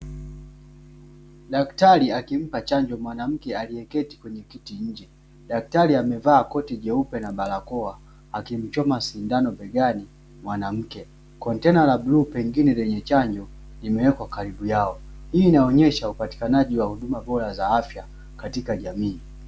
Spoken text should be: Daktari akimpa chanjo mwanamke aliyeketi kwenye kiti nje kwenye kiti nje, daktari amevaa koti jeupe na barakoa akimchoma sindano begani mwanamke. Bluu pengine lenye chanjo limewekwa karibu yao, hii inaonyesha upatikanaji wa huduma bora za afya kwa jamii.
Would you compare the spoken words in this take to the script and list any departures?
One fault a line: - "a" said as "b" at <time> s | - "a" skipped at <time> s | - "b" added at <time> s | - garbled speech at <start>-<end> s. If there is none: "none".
- "kwenye kiti nje" skipped at 5.1 s
- "Kontena la" added at 11.4 s
- "kwa" said as "katika" at 18.4 s